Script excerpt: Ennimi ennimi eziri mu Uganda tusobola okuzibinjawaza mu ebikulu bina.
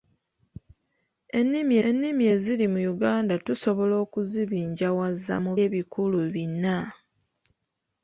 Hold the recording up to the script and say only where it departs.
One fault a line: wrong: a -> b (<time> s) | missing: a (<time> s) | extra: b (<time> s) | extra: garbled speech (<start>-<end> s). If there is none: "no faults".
no faults